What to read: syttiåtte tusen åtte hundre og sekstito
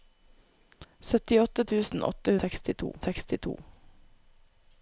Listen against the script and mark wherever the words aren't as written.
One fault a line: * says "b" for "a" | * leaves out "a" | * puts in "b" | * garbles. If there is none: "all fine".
* says "sekstito" for "hundre"